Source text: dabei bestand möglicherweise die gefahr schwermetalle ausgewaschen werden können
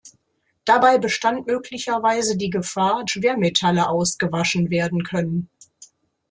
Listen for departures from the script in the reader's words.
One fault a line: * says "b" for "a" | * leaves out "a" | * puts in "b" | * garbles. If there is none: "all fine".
all fine